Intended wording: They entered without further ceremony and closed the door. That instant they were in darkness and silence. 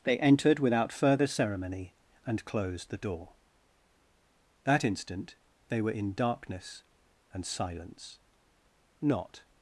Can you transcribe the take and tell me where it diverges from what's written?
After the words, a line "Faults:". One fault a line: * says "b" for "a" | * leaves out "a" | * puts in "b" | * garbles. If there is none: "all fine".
They entered without further ceremony and closed the door. That instant they were in darkness and silence. Not
Faults:
* puts in "Not"